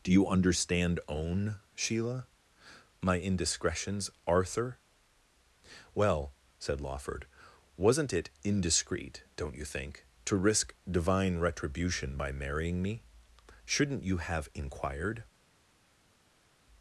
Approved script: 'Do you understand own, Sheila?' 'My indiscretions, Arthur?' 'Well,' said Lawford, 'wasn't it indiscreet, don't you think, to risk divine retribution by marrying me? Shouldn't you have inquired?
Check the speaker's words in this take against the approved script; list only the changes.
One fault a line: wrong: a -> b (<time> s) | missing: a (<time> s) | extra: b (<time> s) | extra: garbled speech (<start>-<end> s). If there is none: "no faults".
no faults